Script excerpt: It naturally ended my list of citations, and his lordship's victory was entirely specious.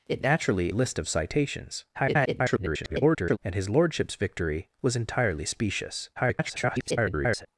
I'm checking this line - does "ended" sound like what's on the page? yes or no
no